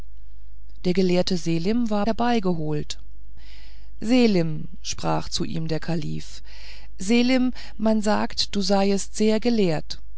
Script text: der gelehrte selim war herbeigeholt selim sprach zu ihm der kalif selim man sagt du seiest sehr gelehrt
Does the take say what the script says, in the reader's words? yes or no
yes